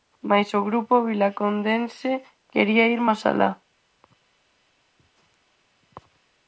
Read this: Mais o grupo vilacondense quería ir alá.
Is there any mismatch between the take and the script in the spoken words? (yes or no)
yes